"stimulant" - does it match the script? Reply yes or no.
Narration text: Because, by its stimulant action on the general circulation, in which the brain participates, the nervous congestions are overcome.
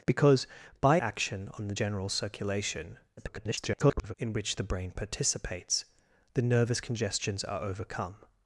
no